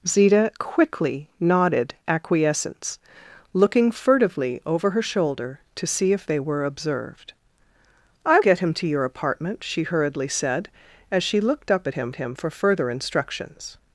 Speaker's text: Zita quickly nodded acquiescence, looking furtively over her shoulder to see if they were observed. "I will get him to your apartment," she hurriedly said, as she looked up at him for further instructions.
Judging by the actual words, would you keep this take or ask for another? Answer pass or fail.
fail